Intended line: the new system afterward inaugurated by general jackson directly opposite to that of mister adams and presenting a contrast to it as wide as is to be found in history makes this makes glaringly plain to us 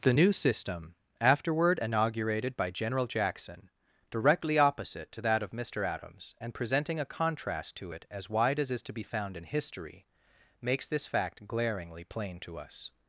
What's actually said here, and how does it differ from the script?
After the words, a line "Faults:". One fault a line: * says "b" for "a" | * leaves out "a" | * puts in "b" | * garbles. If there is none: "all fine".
the new system afterward inaugurated by general jackson directly opposite to that of mister adams and presenting a contrast to it as wide as is to be found in history makes this fact glaringly plain to us
Faults:
* says "fact" for "makes"